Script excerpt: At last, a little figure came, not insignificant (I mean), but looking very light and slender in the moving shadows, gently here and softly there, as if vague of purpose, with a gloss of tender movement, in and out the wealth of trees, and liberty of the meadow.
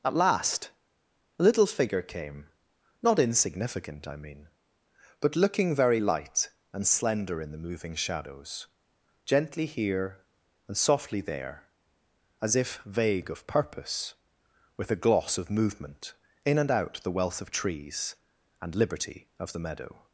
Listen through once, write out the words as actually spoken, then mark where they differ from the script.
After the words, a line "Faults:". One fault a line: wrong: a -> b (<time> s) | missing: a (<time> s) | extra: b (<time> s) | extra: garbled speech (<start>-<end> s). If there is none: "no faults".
At last, a little figure came, not insignificant (I mean), but looking very light and slender in the moving shadows, gently here and softly there, as if vague of purpose, with a gloss of movement, in and out the wealth of trees, and liberty of the meadow.
Faults:
missing: tender (15.5 s)